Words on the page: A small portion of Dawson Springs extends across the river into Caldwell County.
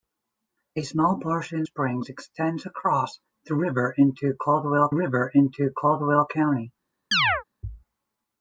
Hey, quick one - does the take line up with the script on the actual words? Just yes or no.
no